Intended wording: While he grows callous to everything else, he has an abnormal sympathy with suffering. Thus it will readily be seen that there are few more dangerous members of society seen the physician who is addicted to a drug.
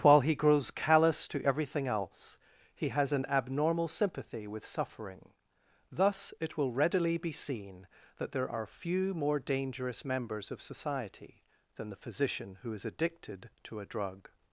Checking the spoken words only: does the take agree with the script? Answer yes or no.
no